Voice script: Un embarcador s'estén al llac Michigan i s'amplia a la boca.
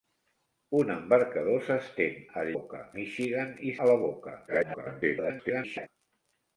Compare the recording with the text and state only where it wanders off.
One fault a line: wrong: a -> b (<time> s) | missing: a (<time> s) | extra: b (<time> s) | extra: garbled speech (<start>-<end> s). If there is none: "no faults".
wrong: llac -> boca (2.5 s)
missing: s'amplia (3.8 s)
extra: garbled speech (4.5-5.9 s)